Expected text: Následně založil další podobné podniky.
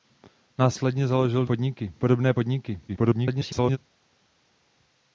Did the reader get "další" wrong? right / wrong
wrong